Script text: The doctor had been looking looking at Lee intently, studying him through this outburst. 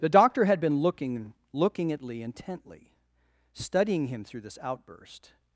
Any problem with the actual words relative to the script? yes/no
no